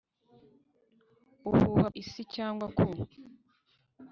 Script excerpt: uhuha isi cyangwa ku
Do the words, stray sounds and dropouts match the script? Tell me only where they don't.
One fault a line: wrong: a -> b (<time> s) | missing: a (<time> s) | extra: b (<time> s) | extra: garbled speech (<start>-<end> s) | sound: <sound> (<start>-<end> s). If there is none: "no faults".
no faults